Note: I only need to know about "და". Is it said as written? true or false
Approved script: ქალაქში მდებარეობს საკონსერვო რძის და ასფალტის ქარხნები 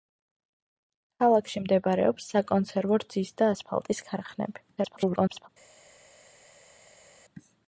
true